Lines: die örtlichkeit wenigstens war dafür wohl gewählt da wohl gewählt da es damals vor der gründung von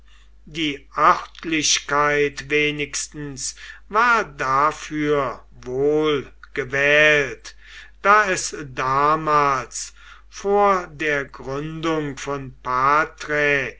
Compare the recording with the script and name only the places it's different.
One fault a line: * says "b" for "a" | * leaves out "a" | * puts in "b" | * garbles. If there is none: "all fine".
* leaves out "wohl gewählt da"